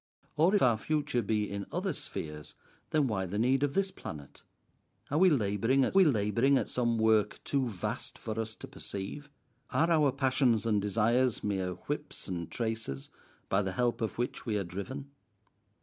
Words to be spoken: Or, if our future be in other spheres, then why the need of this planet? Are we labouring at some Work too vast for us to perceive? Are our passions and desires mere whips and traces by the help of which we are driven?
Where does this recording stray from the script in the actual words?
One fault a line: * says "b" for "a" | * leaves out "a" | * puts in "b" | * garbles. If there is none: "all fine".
* leaves out "if"
* puts in "we labouring at"